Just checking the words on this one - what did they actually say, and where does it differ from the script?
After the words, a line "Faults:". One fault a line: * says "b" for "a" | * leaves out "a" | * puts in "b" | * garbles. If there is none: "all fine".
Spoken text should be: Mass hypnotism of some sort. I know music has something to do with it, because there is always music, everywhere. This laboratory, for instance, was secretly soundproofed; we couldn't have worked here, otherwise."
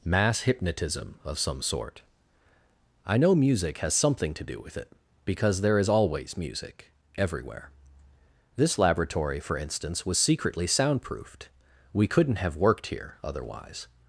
Mass hypnotism of some sort. I know music has something to do with it, because there is always music, everywhere. This laboratory, for instance, was secretly soundproofed; we couldn't have worked here, otherwise."
Faults:
all fine